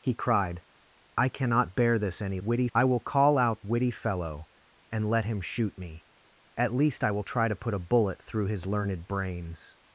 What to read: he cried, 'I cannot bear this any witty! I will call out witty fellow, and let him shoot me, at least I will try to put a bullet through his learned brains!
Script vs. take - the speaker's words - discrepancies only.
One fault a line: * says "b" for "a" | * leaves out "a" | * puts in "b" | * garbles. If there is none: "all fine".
all fine